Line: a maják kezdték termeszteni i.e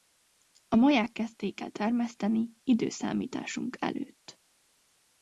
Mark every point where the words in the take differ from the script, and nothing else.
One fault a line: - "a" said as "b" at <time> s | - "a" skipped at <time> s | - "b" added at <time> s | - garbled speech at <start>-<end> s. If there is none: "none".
- "el" added at 1.6 s